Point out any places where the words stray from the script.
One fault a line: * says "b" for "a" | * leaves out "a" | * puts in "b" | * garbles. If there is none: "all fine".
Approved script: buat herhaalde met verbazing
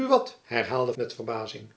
all fine